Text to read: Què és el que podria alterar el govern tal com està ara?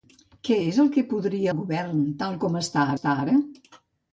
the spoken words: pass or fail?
fail